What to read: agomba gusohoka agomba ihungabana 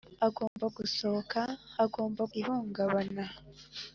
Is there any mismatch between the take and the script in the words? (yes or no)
no